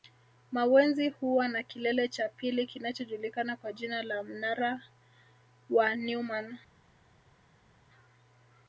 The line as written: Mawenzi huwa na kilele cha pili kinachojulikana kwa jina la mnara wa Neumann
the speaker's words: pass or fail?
pass